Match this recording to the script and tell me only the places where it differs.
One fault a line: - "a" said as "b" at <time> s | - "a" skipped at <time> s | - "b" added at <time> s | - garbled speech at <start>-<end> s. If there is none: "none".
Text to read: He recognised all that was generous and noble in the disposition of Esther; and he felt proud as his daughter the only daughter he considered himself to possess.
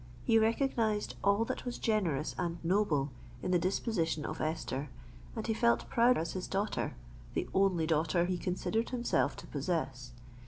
none